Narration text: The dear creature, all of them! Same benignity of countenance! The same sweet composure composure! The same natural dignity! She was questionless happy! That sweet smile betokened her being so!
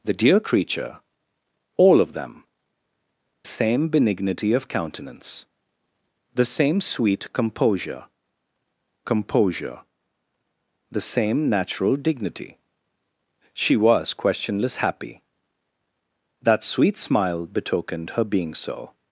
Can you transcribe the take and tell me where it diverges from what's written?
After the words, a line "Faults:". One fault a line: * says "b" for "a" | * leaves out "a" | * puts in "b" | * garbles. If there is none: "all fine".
The dear creature, all of them! Same benignity of countenance! The same sweet composure composure! The same natural dignity! She was questionless happy! That sweet smile betokened her being so!
Faults:
all fine